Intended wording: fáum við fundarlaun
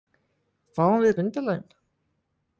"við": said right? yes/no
yes